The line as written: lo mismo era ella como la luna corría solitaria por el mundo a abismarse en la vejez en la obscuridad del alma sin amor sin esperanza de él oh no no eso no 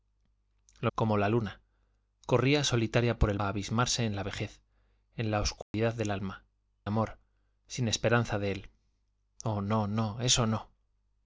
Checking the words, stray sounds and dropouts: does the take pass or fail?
fail